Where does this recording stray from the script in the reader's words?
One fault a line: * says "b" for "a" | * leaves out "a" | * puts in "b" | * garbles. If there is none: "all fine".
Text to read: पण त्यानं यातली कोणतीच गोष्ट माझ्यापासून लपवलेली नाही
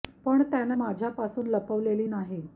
* leaves out "यातली कोणतीच गोष्ट"